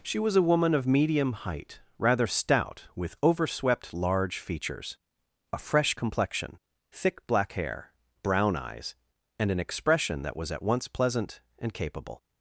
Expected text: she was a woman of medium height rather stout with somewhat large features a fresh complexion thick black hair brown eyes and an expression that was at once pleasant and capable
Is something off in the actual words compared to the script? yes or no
yes